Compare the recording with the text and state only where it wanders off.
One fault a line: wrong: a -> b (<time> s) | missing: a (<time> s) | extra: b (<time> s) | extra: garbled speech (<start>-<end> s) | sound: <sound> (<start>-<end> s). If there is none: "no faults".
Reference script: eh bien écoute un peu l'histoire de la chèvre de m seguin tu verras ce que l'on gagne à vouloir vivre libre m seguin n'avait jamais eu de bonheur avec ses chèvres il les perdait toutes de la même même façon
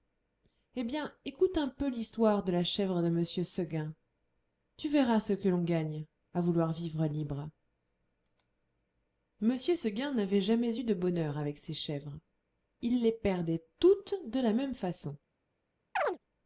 missing: même (14.7 s)
sound: chirp (16.0-16.2 s)